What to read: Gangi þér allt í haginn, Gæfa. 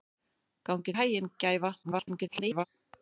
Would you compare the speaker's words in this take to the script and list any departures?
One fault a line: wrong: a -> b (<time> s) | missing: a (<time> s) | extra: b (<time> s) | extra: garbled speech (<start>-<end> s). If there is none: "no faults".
missing: þér allt (0.9 s)
extra: garbled speech (1.8-2.7 s)